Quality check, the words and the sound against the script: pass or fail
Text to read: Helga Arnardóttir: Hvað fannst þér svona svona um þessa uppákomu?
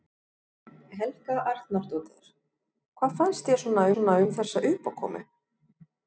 pass